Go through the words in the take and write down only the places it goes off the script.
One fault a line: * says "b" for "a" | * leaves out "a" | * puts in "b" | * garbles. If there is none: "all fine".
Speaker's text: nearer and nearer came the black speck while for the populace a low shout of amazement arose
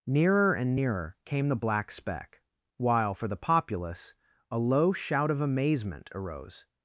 all fine